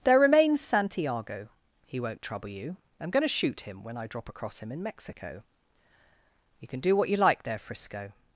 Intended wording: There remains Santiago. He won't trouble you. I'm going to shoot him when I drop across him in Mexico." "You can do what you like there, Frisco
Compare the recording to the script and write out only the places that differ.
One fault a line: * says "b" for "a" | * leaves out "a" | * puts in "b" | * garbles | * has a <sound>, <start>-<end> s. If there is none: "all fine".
all fine